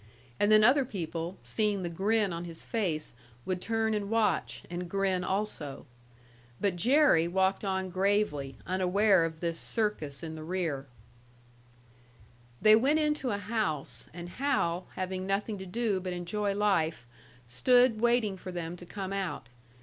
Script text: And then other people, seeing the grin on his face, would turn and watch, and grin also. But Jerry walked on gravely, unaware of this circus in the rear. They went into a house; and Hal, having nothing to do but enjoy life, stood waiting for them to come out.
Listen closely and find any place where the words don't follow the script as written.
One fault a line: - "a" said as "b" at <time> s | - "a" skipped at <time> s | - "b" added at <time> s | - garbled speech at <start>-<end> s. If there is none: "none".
none